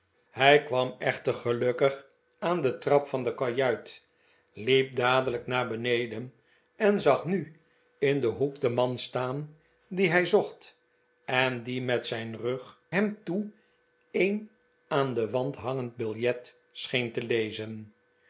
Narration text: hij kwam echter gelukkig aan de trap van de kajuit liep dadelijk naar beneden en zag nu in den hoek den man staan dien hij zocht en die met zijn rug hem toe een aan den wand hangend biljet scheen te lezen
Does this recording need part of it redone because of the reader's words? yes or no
no